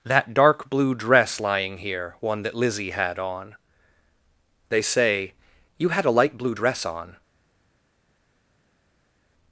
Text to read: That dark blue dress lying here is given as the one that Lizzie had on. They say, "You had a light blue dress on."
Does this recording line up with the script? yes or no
no